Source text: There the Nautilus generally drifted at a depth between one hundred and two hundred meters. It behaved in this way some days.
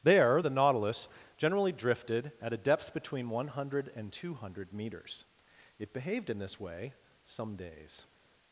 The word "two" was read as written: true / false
true